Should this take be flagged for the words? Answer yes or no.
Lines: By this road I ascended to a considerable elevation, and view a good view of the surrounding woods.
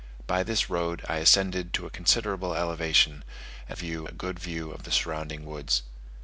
no